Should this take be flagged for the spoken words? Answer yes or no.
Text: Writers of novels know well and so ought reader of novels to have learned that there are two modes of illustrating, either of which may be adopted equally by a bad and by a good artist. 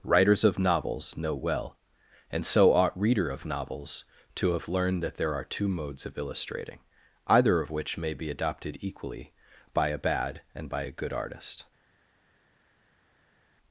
no